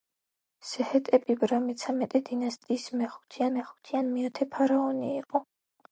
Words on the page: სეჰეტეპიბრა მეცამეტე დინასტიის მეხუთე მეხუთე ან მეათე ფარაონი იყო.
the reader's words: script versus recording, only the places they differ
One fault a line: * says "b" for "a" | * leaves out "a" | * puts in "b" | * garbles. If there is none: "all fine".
all fine